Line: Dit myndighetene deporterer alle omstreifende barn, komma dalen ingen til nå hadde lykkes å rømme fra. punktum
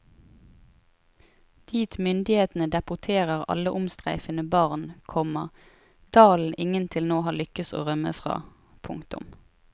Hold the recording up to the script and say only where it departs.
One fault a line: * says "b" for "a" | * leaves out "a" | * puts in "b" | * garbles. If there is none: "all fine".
* says "har" for "hadde"